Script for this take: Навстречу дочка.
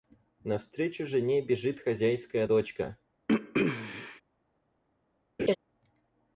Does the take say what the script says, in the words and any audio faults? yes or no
no